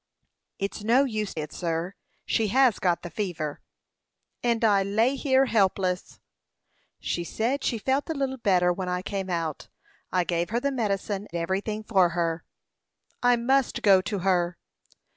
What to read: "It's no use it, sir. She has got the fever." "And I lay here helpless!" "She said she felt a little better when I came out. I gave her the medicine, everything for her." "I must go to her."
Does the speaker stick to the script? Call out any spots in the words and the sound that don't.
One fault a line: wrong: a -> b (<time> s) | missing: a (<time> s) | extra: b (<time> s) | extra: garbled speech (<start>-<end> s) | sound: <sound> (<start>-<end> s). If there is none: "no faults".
no faults